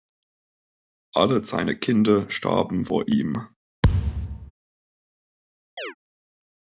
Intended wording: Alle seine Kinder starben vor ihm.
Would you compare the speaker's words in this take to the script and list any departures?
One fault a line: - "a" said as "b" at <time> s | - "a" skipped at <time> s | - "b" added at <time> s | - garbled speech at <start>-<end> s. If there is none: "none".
none